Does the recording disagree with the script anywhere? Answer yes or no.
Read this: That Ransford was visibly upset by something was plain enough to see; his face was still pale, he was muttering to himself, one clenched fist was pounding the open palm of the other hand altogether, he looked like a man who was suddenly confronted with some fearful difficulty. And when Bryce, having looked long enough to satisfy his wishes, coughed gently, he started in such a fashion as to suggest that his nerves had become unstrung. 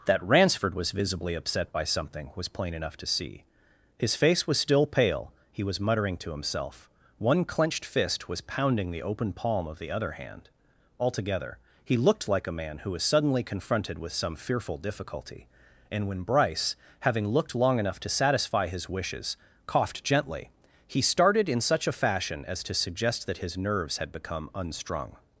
no